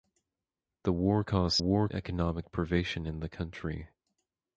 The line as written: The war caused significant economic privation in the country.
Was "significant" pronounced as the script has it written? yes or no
no